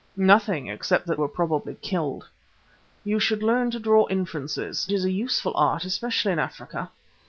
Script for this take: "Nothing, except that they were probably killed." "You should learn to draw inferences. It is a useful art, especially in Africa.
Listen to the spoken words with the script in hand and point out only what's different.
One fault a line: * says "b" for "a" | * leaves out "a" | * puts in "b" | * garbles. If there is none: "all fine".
* leaves out "they"
* leaves out "It"